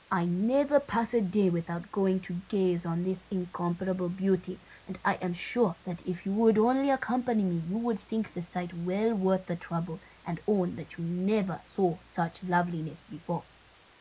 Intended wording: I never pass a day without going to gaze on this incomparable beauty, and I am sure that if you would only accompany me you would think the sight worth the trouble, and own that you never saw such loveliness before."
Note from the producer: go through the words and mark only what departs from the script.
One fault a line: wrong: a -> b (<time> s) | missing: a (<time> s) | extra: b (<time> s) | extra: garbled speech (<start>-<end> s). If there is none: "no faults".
extra: well (8.7 s)